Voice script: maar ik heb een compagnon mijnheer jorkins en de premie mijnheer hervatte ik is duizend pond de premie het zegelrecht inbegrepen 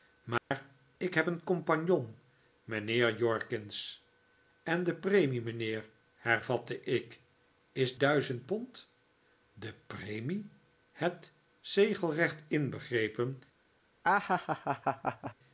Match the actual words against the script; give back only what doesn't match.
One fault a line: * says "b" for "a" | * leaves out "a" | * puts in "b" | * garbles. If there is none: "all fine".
all fine